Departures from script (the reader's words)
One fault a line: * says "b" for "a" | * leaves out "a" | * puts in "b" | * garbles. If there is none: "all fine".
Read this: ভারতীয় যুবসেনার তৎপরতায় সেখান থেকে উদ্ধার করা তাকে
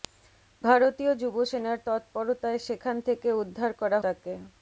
all fine